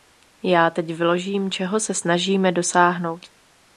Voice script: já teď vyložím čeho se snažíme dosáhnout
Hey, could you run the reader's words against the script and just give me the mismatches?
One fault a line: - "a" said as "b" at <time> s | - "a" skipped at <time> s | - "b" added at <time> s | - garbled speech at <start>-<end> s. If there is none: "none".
none